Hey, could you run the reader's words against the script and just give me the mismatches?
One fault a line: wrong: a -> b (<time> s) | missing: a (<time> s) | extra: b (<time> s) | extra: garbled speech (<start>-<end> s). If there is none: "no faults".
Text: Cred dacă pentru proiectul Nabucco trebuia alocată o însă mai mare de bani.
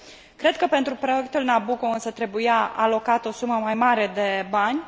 wrong: dacă -> că (0.6 s)
extra: însă (1.9 s)
wrong: însă -> sumă (3.3 s)